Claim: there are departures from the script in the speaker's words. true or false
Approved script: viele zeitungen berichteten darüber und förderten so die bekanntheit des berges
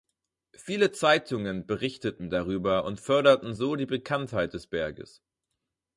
false